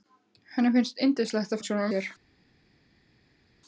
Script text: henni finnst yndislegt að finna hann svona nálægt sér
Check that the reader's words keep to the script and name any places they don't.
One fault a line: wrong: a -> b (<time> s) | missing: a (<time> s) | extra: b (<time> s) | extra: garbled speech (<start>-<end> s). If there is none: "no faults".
missing: finna (1.6 s)
missing: nálægt (1.9 s)